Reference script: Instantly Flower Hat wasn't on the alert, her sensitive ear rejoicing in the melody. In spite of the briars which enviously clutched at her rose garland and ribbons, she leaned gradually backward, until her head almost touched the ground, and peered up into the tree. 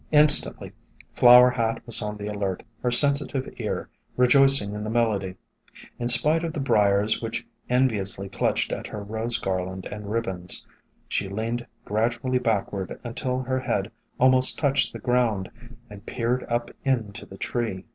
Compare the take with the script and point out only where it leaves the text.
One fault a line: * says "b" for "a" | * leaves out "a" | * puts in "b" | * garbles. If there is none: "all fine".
* says "was" for "wasn't"